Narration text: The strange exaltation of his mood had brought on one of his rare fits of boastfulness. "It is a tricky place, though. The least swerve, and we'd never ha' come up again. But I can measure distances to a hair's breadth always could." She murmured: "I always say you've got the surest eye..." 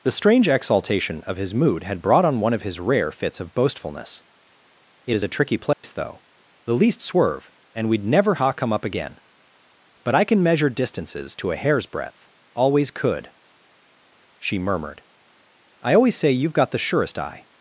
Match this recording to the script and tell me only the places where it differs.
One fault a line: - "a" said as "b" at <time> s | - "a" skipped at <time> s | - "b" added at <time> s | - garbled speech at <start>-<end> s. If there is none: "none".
none